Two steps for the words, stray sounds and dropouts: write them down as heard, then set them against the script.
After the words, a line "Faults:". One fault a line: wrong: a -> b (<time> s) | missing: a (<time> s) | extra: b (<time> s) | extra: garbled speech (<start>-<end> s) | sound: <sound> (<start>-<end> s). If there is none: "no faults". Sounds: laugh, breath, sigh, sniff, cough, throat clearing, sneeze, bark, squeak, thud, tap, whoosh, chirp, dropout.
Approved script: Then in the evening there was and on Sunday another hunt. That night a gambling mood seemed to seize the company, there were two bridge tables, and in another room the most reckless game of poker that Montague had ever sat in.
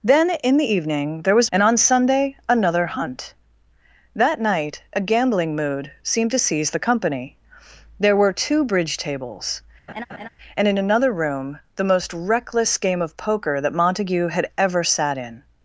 Then in the evening there was and on Sunday another hunt. That night a gambling mood seemed to seize the company, there were two bridge tables, and in another room the most reckless game of poker that Montague had ever sat in.
Faults:
sound: laugh (9.9-10.3 s)